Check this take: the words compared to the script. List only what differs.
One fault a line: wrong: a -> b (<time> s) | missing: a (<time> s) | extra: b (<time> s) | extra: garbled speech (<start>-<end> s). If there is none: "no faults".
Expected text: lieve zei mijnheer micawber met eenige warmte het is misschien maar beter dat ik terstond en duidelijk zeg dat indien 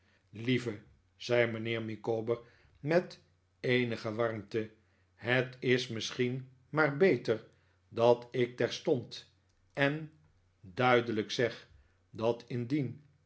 no faults